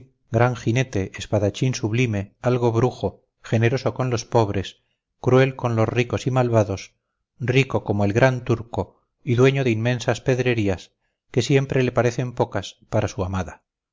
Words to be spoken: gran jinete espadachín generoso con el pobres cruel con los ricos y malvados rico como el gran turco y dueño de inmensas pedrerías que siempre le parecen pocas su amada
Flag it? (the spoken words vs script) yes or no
yes